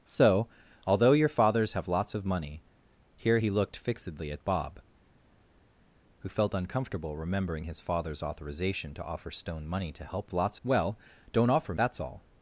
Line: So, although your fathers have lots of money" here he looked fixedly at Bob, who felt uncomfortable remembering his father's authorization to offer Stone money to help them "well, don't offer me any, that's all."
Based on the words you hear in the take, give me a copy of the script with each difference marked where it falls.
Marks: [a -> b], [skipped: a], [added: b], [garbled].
So, although your fathers have lots of money" here he looked fixedly at Bob, who felt uncomfortable remembering his father's authorization to offer Stone money to help [them -> lots] "well, don't offer [skipped: me any,] that's all."